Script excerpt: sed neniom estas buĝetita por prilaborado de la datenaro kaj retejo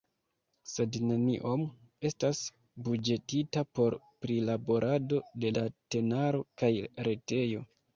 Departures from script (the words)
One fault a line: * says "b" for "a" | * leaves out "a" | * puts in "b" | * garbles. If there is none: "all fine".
* leaves out "la"